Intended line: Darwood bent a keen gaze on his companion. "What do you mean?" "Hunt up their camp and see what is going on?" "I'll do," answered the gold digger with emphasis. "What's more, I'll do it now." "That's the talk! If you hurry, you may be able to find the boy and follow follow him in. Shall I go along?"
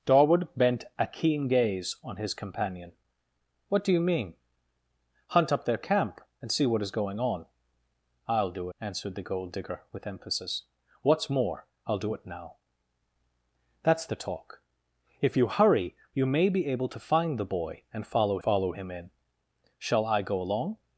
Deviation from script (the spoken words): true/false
false